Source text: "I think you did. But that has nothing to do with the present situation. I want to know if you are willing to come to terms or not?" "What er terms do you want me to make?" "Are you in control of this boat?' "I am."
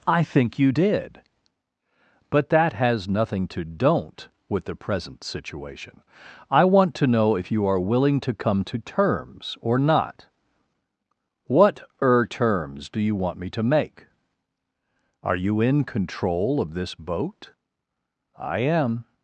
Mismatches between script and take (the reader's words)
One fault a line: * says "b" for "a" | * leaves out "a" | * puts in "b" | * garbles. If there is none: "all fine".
* says "don't" for "do"